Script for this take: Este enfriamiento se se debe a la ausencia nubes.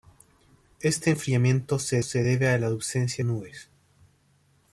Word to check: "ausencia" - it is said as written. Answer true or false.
true